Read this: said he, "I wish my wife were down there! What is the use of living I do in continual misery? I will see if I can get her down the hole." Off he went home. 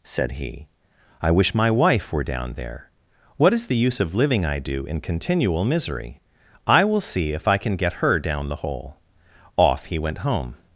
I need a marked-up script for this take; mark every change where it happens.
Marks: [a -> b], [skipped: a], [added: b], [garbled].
said he, "I wish my wife were down there! What is the use of living I do in continual misery? I will see if I can get her down the hole." Off he went home.